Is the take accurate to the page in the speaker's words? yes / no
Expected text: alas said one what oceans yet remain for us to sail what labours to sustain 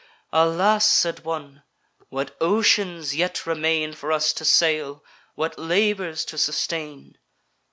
yes